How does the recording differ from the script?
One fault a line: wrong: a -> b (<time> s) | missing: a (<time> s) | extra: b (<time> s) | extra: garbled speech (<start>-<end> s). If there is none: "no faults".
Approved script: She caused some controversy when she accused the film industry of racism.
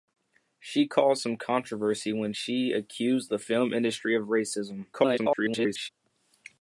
extra: garbled speech (4.9-5.9 s)